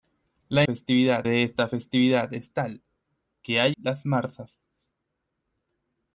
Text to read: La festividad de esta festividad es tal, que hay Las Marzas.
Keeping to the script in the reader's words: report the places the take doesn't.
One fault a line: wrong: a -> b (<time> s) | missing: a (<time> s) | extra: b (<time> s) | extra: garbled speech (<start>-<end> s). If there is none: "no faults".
no faults